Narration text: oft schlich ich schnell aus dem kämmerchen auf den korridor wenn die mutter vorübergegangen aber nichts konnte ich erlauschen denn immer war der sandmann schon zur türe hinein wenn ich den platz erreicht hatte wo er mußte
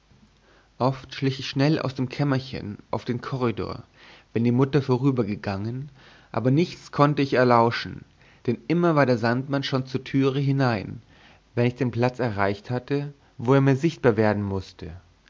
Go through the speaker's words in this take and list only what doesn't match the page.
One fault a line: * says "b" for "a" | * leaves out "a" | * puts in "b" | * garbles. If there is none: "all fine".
* puts in "mir sichtbar werden"